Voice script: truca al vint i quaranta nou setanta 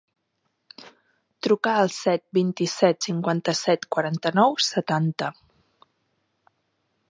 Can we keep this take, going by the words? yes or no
no